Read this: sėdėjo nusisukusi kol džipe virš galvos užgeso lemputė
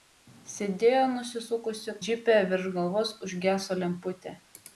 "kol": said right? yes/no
no